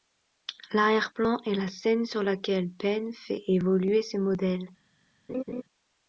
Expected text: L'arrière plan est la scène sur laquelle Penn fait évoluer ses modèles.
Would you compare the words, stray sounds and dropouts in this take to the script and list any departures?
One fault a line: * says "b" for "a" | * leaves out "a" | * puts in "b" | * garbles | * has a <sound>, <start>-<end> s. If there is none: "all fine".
* has a laugh, 5.3-5.6 s